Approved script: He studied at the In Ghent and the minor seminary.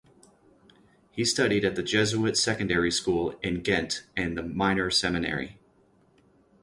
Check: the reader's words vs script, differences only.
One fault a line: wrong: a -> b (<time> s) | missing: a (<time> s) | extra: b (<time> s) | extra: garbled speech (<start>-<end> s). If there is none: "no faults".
extra: Jesuit secondary school (1.8 s)